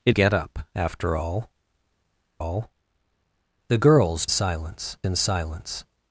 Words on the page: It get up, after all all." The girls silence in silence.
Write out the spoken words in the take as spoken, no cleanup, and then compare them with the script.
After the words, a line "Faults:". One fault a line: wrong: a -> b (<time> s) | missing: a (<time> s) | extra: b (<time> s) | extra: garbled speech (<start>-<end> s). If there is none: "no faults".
It get up, after all all." The girls silence in silence.
Faults:
no faults